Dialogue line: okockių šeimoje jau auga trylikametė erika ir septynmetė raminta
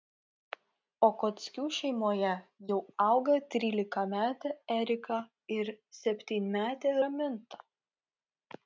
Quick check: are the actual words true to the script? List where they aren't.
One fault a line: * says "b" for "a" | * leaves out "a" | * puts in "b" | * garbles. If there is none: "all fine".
all fine